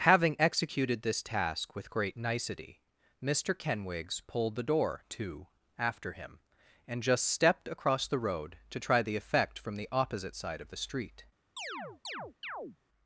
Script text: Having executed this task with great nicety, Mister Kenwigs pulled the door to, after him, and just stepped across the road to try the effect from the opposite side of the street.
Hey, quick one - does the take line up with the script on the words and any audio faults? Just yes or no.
no